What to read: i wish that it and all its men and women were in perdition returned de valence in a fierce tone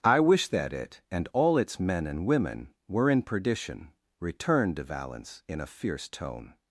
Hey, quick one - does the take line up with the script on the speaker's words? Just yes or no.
yes